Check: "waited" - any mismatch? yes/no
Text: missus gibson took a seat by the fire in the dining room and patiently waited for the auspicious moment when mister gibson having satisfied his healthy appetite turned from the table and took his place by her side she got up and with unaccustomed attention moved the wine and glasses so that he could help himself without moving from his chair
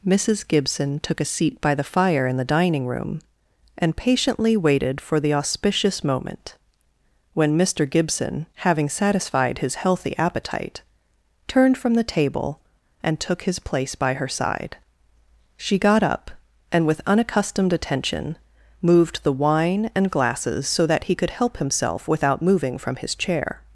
no